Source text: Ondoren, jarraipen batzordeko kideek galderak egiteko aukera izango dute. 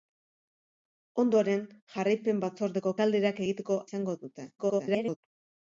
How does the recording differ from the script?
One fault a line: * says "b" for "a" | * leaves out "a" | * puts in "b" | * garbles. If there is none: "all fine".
* leaves out "kideek"
* leaves out "aukera"
* garbles